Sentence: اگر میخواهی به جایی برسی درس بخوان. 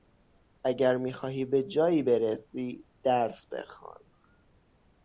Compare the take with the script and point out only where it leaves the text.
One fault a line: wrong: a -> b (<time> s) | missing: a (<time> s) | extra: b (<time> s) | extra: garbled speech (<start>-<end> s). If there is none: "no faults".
no faults